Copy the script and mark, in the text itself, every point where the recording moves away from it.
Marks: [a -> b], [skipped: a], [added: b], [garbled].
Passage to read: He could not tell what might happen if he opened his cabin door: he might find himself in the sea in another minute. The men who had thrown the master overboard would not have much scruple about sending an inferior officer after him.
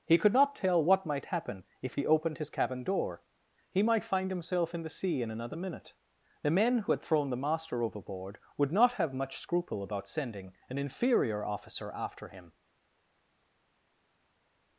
He could not tell what might happen if he opened his cabin door: he might find himself in the sea in another minute. The men who had thrown the master overboard would not have much scruple about sending an inferior officer after him.